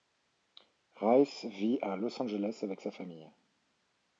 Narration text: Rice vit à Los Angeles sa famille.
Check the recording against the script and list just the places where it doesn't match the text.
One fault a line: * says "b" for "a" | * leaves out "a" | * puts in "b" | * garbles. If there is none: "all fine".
* puts in "avec"